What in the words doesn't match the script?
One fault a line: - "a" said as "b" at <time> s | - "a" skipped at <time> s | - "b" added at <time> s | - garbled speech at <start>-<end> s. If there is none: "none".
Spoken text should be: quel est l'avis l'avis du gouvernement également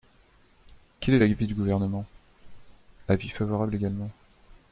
- "l'avis" skipped at 1.3 s
- "avis favorable" added at 3.1 s